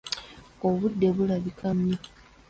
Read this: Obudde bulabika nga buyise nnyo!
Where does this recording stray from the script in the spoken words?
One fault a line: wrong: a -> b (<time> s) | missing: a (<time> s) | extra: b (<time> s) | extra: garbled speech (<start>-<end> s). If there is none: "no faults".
missing: nga buyise (1.7 s)